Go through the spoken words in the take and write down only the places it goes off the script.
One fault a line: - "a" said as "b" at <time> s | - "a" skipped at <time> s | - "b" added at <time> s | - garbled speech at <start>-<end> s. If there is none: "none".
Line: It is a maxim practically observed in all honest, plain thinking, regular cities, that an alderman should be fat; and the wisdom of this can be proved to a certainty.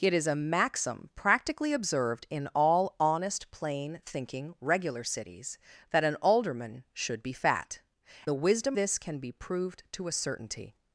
- "and" skipped at 7.8 s
- "of" skipped at 8.8 s